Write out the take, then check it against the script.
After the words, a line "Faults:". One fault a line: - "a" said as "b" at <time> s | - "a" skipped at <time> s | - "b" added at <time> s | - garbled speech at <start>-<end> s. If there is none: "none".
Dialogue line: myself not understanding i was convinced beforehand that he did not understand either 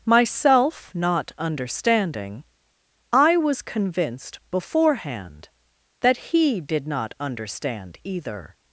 myself not understanding i was convinced beforehand that he did not understand either
Faults:
none